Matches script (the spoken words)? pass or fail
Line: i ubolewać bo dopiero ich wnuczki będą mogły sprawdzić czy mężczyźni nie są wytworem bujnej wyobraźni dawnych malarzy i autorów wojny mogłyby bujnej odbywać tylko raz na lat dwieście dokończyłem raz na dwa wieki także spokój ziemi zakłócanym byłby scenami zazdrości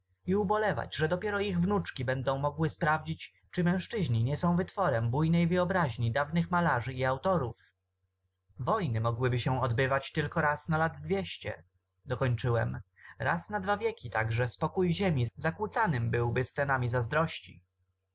fail